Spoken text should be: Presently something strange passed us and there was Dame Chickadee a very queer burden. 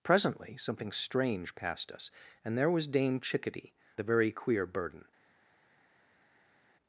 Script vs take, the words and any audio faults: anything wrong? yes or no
no